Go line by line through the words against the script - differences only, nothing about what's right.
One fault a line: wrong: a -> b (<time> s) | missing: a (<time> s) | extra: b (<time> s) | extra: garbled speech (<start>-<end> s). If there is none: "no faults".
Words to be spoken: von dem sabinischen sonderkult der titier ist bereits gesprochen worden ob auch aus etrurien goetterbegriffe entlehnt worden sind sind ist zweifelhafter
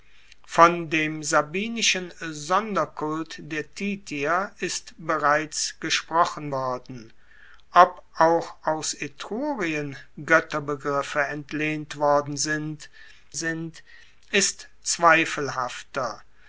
no faults